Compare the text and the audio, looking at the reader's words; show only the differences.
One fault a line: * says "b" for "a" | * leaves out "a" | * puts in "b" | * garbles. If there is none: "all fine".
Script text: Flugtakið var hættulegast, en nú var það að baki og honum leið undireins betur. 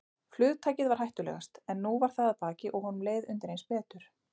all fine